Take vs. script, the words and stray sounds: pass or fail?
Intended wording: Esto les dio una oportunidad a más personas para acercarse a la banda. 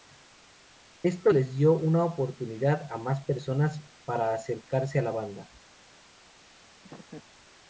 fail